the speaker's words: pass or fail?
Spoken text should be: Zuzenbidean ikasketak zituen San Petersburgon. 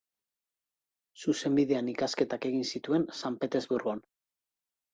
fail